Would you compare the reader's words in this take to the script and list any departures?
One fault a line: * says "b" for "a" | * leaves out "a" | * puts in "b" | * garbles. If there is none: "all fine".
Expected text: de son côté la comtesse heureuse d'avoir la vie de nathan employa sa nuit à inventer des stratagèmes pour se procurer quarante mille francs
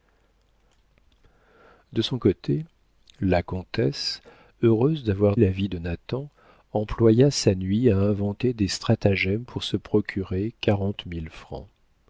all fine